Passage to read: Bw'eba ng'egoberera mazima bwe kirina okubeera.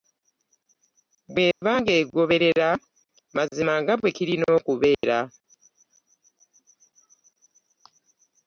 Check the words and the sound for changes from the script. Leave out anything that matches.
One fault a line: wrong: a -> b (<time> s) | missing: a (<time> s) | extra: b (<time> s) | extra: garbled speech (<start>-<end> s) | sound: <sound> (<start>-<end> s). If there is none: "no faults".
sound: dropout (1.5-1.6 s)
extra: nga (3.8 s)
sound: dropout (4.9-5.0 s)